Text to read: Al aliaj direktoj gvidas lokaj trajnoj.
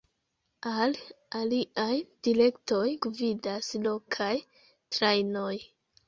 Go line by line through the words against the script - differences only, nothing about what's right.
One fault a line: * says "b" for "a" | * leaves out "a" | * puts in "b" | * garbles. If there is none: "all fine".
all fine